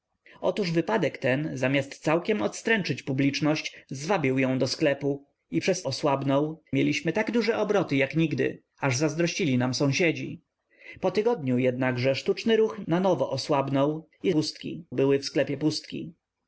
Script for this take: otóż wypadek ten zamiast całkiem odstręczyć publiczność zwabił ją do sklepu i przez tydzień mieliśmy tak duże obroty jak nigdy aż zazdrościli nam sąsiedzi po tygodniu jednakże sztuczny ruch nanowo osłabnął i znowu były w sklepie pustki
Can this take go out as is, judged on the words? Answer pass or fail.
fail